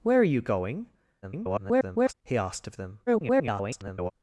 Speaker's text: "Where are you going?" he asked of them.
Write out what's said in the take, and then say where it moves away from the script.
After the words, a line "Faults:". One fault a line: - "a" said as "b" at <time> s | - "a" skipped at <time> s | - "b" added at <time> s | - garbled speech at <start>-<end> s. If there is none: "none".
"Where are you going?" [garbled] he asked of them. [garbled]
Faults:
- garbled speech at 1.2-2.1 s
- garbled speech at 3.1-4.1 s